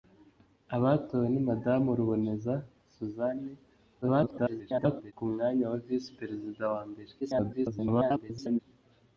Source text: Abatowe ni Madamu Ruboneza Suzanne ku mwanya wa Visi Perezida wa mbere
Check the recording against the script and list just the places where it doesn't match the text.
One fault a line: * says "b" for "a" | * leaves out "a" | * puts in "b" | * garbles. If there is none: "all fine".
* garbles
* garbles